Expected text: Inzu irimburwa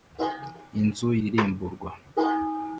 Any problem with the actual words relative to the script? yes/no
no